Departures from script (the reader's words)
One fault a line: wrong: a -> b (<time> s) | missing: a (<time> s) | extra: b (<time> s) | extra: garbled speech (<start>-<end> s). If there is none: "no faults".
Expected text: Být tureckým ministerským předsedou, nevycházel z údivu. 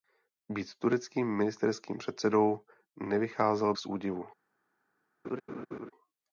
no faults